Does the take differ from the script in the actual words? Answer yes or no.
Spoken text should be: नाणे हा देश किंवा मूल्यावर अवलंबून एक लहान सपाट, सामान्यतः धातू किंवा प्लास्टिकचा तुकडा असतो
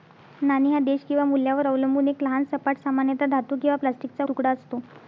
no